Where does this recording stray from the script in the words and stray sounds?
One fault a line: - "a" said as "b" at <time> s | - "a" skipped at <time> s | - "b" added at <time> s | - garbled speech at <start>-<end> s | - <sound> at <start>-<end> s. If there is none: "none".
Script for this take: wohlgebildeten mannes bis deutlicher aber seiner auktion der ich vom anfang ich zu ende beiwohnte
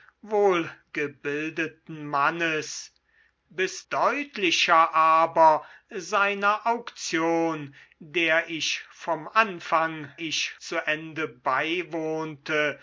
none